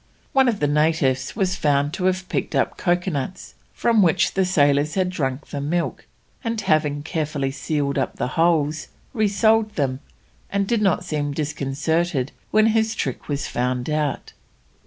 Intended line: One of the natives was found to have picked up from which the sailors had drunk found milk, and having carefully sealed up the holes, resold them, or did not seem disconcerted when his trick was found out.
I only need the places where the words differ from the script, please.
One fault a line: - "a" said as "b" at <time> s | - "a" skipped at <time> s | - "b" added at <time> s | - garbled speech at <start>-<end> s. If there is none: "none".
- "coconuts" added at 2.8 s
- "found" said as "the" at 5.5 s
- "or" said as "and" at 10.5 s